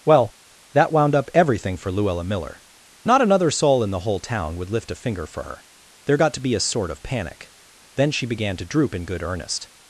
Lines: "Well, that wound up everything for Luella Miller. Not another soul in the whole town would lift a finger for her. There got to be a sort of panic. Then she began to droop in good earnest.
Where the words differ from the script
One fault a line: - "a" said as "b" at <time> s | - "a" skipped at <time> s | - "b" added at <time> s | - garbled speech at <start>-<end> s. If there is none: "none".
none